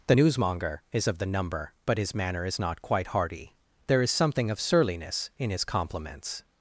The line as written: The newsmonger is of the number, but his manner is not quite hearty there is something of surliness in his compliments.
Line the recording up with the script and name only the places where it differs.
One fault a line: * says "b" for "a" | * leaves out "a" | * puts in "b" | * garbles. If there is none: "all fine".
all fine